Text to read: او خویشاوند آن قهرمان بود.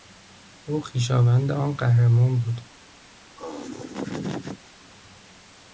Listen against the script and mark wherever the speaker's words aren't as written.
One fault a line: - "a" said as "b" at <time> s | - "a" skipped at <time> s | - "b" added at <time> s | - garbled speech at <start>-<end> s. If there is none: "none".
none